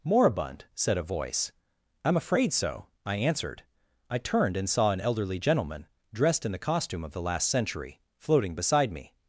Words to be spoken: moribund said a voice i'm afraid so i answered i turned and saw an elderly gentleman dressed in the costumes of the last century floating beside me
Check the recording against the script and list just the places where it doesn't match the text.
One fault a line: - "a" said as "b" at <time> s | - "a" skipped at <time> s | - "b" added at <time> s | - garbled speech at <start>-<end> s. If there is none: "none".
- "costumes" said as "costume" at 6.6 s